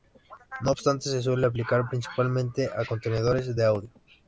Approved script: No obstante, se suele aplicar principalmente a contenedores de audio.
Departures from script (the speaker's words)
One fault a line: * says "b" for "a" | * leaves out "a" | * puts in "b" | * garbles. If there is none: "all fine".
all fine